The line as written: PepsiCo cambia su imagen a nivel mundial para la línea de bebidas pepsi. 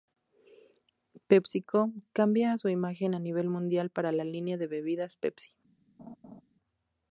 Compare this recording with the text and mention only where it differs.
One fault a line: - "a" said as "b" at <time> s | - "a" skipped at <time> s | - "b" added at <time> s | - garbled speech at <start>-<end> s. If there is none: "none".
none